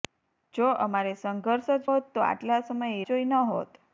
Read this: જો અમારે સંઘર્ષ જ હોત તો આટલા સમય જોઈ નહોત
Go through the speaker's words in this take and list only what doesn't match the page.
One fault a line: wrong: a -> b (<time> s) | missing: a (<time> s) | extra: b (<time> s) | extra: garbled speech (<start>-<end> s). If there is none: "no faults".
no faults